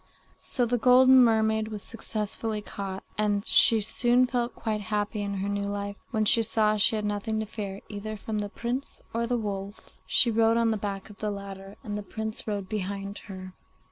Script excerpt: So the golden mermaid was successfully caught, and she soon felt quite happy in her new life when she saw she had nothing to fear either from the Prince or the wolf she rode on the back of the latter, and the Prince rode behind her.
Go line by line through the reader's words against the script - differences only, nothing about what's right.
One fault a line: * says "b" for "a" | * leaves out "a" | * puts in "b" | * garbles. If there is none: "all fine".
all fine